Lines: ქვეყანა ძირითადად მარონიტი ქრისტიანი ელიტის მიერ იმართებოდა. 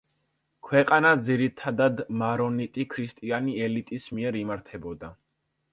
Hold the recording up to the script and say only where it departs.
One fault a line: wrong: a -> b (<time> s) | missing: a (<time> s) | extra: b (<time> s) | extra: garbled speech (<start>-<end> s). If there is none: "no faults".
no faults